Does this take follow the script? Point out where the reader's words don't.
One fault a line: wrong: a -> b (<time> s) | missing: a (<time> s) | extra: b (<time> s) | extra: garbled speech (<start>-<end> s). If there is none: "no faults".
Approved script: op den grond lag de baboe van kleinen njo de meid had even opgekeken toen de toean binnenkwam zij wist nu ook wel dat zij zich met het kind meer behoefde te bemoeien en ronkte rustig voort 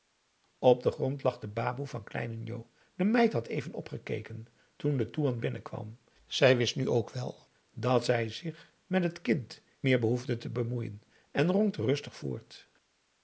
no faults